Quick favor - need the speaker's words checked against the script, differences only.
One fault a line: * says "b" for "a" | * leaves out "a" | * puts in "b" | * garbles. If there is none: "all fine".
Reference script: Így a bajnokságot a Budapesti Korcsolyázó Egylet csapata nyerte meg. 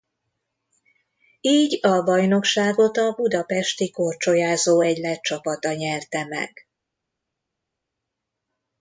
all fine